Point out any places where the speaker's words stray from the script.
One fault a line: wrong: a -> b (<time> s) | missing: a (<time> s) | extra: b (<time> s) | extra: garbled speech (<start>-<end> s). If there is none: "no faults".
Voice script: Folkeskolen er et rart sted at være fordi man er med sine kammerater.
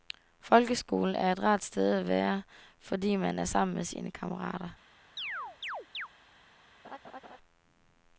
extra: sammen (3.5 s)